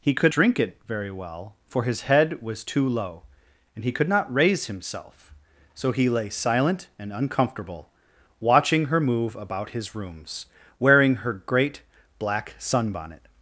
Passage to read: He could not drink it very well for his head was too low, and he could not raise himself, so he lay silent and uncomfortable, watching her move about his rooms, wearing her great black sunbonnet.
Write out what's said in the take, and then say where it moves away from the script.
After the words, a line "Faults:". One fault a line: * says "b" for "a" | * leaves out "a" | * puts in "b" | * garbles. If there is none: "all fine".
He could drink it very well for his head was too low, and he could not raise himself, so he lay silent and uncomfortable, watching her move about his rooms, wearing her great black sunbonnet.
Faults:
* leaves out "not"